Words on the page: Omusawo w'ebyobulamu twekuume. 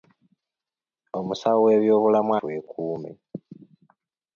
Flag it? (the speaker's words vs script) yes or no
no